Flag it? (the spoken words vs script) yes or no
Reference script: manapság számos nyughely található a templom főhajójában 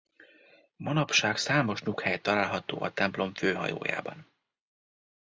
no